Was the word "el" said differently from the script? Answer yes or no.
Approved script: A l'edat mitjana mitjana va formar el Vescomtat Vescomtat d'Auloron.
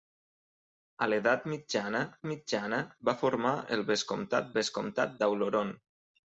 no